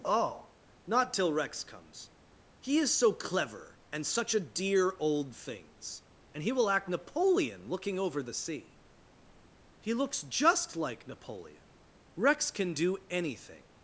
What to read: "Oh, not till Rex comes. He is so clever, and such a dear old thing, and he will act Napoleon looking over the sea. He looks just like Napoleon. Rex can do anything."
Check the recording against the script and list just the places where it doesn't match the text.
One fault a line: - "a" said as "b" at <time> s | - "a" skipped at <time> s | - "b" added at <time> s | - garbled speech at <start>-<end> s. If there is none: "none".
- "thing" said as "things" at 5.3 s